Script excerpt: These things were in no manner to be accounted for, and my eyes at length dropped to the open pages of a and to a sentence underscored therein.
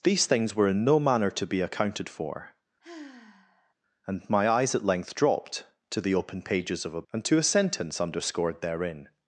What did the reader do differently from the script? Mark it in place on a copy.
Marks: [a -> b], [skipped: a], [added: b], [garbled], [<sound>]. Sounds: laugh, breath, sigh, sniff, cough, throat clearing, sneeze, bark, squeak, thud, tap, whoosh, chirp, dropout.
These things were in no manner to be accounted for, [sigh] and my eyes at length dropped to the open pages of a and to a sentence underscored therein.